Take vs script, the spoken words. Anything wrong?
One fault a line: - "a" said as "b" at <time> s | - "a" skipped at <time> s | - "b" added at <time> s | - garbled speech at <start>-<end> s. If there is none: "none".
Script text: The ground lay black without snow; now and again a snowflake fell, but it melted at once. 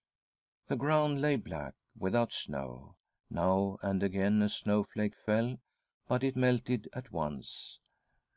none